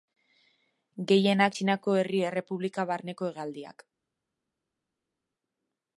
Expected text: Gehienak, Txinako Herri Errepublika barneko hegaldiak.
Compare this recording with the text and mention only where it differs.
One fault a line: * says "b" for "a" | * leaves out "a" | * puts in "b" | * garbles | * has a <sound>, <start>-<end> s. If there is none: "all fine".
all fine